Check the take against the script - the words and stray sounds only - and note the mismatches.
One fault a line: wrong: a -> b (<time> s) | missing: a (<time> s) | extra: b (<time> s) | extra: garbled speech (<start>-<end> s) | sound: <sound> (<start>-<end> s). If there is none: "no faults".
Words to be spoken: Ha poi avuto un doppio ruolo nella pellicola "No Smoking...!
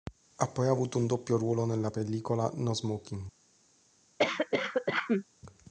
sound: cough (4.2-5.2 s)